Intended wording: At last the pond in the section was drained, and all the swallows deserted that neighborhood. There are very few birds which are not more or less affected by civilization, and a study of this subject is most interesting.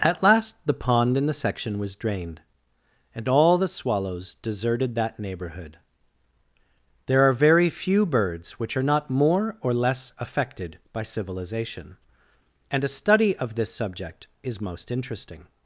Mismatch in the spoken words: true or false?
false